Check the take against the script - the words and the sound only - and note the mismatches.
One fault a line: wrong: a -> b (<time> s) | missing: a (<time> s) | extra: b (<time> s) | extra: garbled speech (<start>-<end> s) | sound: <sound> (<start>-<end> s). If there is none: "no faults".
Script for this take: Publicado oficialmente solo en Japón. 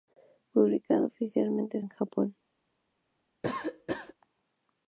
missing: solo (1.8 s)
sound: cough (3.4-4.1 s)